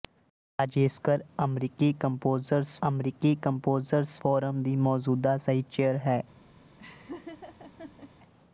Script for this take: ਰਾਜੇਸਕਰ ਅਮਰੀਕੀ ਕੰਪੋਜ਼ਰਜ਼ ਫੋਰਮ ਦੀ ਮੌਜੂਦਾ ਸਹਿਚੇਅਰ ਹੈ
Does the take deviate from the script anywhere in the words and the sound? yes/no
yes